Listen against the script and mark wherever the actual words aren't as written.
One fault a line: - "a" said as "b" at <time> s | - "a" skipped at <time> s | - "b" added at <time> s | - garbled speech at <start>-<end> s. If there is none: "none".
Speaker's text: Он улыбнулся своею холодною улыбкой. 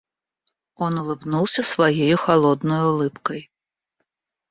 none